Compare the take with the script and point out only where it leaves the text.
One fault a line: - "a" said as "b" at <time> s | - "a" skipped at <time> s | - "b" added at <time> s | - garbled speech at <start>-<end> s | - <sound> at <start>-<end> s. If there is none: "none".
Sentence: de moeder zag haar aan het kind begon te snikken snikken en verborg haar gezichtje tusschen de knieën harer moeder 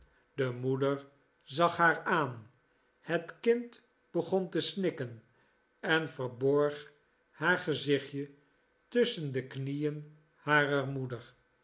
- "snikken" skipped at 5.2 s